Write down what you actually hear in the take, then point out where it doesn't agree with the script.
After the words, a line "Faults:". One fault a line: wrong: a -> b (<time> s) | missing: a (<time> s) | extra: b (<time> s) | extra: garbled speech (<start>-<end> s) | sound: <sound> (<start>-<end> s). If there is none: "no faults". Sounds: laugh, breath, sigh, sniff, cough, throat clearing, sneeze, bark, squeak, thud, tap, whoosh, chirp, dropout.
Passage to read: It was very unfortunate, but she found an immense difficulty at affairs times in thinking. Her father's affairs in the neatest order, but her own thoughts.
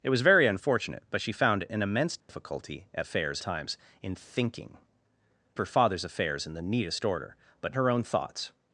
It was very unfortunate, but she found an immense difficulty at affairs times in thinking. Her father's affairs in the neatest order, but her own thoughts.
Faults:
sound: dropout (2.2-2.3 s)